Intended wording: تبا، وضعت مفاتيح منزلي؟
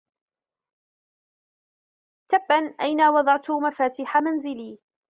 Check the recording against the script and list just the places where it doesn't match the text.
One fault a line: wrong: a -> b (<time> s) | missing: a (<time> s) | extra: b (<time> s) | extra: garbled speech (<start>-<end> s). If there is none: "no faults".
extra: أين (2.8 s)